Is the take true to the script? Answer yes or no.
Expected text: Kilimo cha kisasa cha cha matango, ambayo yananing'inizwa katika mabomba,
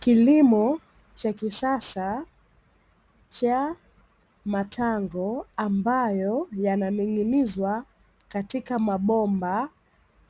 no